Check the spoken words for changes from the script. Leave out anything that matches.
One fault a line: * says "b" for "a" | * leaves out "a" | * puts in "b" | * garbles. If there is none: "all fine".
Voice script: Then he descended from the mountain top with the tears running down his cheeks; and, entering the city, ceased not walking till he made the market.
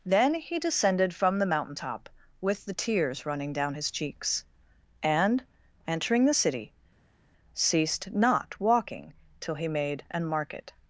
* says "an" for "the"